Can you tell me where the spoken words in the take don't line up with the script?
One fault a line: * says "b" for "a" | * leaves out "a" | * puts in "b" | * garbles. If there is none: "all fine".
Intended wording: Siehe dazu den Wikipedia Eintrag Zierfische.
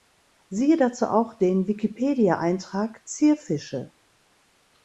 * puts in "auch"